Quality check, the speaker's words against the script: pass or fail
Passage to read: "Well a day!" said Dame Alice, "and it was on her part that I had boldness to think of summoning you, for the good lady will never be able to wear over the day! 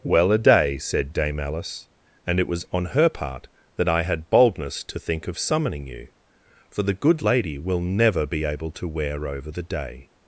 pass